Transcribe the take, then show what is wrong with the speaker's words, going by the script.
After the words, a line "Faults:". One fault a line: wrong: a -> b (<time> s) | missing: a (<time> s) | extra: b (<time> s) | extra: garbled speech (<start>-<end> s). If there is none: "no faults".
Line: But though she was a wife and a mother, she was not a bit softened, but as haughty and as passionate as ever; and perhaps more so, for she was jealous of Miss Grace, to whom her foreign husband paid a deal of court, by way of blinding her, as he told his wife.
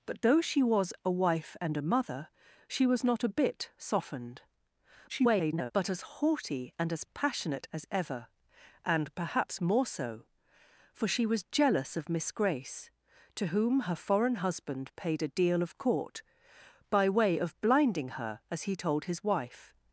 But though she was a wife and a mother, she was not a bit softened, [garbled] but as haughty and as passionate as ever; and perhaps more so, for she was jealous of Miss Grace, to whom her foreign husband paid a deal of court, by way of blinding her, as he told his wife.
Faults:
extra: garbled speech (5.1-5.7 s)